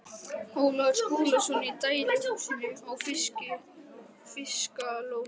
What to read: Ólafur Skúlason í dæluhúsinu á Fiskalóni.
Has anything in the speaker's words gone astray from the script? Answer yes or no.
no